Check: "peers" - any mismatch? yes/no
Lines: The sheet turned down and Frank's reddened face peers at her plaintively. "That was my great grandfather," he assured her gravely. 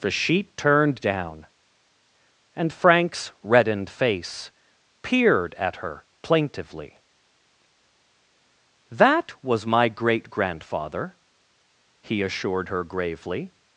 yes